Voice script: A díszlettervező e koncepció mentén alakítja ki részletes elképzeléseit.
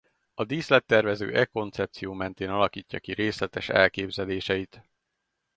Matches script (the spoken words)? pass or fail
pass